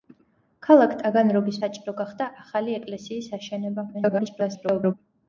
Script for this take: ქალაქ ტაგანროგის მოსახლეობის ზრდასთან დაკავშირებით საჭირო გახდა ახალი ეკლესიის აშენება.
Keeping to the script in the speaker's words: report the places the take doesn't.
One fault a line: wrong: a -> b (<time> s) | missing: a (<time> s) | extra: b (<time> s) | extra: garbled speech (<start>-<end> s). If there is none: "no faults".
missing: მოსახლეობის ზრდასთან დაკავშირებით (1.6 s)
extra: garbled speech (3.9-4.9 s)